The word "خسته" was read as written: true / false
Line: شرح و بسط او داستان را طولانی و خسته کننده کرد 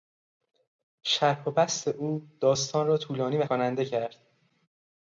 false